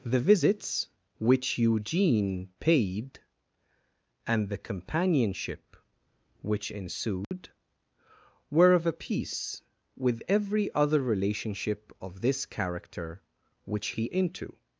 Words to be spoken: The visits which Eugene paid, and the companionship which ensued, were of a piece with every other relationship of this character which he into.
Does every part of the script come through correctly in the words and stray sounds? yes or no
no